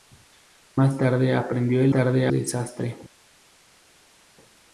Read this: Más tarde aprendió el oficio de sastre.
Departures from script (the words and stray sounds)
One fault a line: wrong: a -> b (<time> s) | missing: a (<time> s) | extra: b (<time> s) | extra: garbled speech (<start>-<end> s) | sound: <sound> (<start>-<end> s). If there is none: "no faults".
wrong: oficio -> tarde (1.9 s)